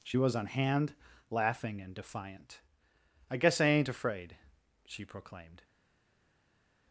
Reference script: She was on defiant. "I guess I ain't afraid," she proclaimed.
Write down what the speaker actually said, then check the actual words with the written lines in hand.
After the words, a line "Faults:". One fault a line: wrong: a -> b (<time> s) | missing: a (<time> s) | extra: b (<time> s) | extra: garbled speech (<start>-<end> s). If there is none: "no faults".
She was on hand, laughing and defiant. "I guess I ain't afraid," she proclaimed.
Faults:
extra: hand laughing and (0.5 s)